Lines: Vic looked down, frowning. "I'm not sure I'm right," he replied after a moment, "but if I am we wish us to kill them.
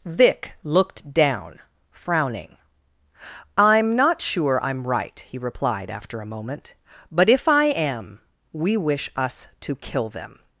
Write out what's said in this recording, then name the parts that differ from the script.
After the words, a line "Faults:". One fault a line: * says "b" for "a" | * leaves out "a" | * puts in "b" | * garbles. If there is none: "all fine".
Vic looked down, frowning. "I'm not sure I'm right," he replied after a moment, "but if I am we wish us to kill them.
Faults:
all fine